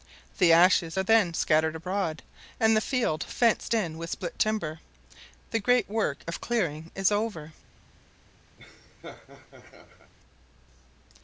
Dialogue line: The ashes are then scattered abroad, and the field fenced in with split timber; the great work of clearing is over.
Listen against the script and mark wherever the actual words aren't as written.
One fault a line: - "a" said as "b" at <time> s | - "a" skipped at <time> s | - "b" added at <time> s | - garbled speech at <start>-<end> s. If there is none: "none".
none